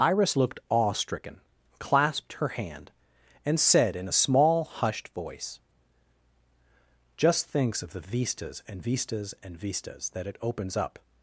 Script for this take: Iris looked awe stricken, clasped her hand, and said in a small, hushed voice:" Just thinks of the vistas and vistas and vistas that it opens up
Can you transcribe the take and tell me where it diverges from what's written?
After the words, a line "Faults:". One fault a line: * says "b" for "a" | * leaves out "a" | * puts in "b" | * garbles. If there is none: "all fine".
Iris looked awe stricken, clasped her hand, and said in a small, hushed voice:" Just thinks of the vistas and vistas and vistas that it opens up
Faults:
all fine